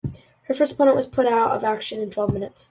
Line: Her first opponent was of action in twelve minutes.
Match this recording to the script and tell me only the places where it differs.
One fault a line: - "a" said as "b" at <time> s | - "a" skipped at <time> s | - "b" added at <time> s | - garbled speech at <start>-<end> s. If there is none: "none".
- "put out" added at 1.1 s